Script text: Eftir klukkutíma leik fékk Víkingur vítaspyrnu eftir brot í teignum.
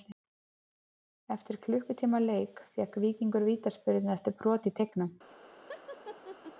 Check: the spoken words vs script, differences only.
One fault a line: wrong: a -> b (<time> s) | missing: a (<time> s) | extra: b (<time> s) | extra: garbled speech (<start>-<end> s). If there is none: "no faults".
no faults